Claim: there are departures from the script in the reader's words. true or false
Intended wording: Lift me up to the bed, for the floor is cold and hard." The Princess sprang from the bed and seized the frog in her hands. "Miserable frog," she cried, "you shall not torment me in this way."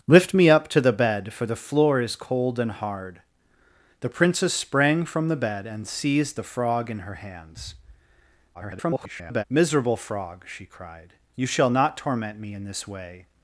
true